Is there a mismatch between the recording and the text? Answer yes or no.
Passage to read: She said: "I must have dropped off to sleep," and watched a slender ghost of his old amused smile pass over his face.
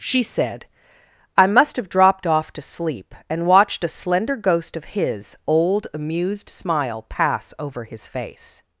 no